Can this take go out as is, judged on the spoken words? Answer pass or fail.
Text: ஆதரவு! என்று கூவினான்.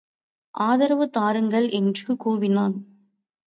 fail